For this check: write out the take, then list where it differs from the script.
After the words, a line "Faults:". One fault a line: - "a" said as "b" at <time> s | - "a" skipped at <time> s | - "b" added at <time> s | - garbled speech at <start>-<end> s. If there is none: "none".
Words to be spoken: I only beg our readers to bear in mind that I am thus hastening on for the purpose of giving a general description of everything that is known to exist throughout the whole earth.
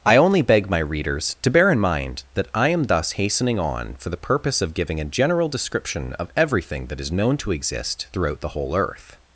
I only beg my readers to bear in mind that I am thus hastening on for the purpose of giving a general description of everything that is known to exist throughout the whole earth.
Faults:
- "our" said as "my" at 0.7 s